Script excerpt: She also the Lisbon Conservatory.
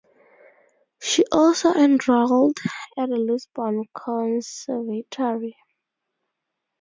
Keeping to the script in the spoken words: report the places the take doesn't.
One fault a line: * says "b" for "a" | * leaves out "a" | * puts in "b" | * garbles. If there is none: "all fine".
* puts in "enrolled at"